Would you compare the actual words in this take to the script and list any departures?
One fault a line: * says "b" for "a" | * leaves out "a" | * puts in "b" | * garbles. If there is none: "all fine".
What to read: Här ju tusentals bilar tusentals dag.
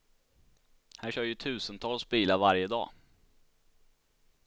* puts in "kör"
* says "varje" for "tusentals"